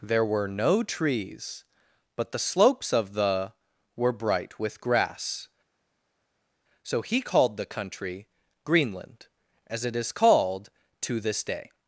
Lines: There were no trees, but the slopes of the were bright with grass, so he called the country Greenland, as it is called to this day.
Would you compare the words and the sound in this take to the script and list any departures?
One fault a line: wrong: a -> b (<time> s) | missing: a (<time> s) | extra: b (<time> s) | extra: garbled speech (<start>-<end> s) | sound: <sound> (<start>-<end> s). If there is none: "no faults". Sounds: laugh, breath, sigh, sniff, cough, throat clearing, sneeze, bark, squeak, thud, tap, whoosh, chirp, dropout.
no faults